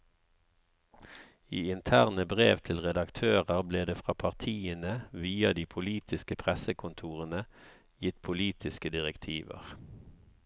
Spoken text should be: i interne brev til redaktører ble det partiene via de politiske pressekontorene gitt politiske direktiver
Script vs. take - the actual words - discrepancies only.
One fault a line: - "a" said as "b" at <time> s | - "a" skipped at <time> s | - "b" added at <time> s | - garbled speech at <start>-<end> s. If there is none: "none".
- "fra" added at 4.0 s